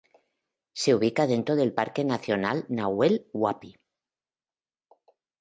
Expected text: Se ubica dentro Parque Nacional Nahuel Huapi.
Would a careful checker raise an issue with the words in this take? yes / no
yes